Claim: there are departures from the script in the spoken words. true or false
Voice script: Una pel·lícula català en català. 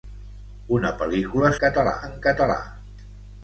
false